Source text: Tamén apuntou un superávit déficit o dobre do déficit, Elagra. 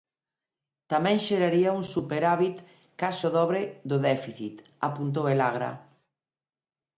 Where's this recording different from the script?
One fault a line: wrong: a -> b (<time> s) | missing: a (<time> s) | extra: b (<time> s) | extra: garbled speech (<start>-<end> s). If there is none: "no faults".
wrong: apuntou -> xeraría (1.3 s)
wrong: déficit -> case (3.0 s)
extra: apuntou (4.9 s)